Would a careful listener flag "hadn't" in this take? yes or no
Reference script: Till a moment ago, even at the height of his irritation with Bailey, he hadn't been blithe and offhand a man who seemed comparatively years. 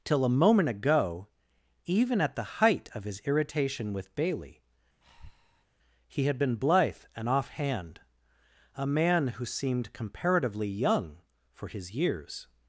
yes